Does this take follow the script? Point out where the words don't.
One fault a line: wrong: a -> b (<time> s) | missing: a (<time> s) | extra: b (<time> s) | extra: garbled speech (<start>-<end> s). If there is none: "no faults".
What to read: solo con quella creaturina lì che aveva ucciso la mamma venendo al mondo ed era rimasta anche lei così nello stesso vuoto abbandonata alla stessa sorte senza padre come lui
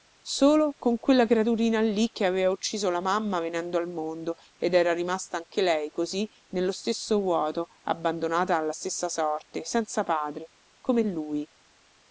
no faults